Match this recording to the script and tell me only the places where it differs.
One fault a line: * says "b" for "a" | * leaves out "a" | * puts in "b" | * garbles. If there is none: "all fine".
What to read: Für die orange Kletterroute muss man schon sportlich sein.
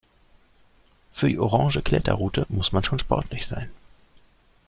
all fine